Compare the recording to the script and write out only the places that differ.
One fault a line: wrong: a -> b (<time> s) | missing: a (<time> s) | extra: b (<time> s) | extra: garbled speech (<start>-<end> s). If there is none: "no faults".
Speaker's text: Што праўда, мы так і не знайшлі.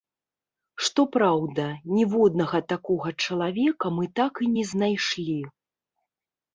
extra: ніводнага такога чалавека (2.0 s)